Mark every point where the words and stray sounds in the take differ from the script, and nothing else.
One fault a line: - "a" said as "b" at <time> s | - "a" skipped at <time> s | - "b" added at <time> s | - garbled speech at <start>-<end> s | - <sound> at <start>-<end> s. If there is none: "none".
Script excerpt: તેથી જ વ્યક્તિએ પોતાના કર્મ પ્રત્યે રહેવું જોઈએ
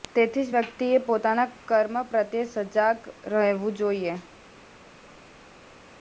- "સજાગ" added at 2.5 s